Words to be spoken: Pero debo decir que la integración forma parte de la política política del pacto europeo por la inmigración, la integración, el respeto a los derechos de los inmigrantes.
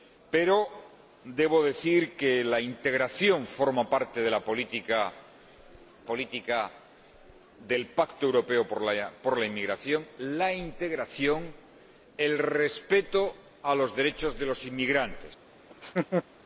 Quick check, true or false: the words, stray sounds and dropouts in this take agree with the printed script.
false